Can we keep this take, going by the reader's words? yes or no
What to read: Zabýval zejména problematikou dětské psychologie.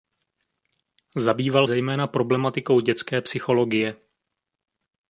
yes